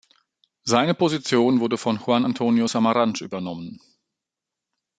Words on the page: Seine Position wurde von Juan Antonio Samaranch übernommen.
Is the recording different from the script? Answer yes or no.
no